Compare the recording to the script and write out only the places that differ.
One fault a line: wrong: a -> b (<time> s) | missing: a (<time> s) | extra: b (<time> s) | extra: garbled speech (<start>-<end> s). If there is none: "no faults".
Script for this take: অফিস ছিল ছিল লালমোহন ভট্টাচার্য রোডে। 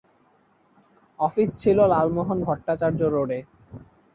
missing: ছিল (1.8 s)